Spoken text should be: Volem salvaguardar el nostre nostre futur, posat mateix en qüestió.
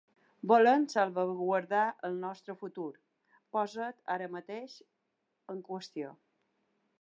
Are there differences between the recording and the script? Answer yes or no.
yes